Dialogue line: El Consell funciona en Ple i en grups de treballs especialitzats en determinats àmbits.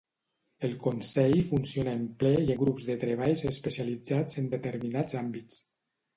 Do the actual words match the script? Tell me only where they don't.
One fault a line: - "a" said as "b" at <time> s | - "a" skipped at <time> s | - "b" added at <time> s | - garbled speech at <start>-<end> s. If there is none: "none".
- "en" skipped at 2.5 s